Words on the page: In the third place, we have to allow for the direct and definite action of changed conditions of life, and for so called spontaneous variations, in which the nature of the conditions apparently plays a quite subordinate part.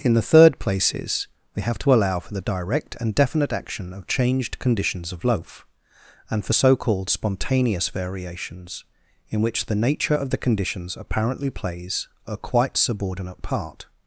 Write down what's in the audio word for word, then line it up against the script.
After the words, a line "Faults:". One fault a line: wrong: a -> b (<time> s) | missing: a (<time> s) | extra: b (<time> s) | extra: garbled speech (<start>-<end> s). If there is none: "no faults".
In the third places, we have to allow for the direct and definite action of changed conditions of loaf, and for so called spontaneous variations, in which the nature of the conditions apparently plays a quite subordinate part.
Faults:
wrong: place -> places (0.6 s)
wrong: life -> loaf (5.2 s)